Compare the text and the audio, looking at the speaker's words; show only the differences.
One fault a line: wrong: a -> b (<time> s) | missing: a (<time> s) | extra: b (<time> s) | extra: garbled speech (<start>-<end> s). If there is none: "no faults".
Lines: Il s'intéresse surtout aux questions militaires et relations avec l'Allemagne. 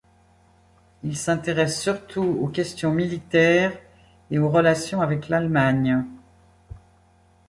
extra: aux (4.4 s)